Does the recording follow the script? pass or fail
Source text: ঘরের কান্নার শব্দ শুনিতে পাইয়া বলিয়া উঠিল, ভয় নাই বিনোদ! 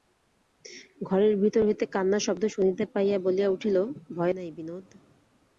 fail